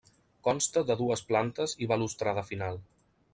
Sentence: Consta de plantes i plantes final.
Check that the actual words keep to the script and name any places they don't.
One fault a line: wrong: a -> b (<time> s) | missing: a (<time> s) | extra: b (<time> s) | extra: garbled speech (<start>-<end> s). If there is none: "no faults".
extra: dues (1.0 s)
wrong: plantes -> balustrada (1.9 s)